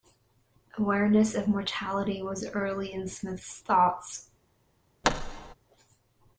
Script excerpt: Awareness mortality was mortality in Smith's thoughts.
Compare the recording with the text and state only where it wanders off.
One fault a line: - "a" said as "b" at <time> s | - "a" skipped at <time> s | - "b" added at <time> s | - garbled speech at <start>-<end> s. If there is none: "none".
- "of" added at 1.4 s
- "mortality" said as "early" at 2.5 s